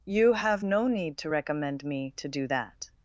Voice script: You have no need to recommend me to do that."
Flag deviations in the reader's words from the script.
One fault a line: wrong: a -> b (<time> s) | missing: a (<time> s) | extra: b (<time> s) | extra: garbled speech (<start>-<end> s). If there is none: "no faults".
no faults